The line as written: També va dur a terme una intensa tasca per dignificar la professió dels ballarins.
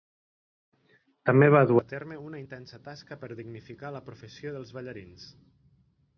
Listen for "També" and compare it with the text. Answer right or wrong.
right